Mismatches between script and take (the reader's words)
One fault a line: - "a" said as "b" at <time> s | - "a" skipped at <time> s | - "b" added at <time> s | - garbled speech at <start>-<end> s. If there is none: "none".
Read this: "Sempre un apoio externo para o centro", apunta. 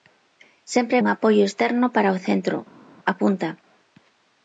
none